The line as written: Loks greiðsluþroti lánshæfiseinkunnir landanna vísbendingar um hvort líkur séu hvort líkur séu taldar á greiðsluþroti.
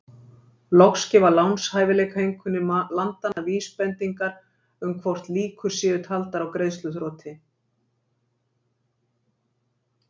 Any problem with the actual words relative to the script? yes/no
yes